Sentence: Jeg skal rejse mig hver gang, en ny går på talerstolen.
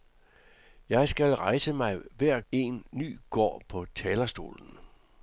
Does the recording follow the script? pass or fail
fail